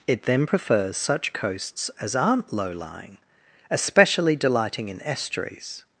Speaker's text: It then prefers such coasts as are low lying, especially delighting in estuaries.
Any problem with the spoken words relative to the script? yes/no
yes